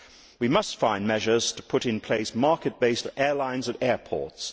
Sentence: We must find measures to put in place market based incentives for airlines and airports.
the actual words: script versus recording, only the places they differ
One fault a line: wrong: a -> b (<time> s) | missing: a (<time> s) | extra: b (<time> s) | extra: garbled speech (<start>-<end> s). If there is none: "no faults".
missing: incentives (3.1 s)